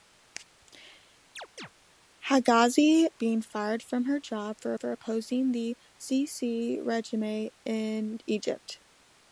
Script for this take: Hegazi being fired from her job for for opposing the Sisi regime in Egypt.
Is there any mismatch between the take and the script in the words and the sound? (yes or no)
yes